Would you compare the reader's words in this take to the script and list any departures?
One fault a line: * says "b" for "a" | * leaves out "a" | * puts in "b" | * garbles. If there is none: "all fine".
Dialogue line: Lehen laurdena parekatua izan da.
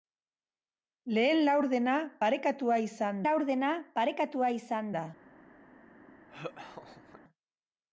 * puts in "laurdena parekatua izan"